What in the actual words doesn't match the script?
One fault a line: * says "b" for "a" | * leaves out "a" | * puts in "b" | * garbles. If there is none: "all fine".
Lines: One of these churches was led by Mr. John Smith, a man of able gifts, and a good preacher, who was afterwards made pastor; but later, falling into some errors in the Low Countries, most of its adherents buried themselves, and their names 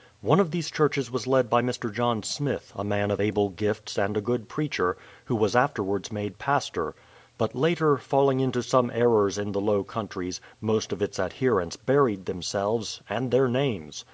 all fine